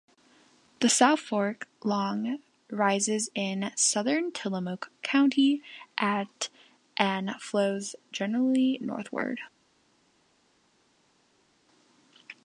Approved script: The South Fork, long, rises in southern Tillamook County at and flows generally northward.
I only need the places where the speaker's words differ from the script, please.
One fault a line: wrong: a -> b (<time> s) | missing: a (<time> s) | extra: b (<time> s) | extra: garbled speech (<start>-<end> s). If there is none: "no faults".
no faults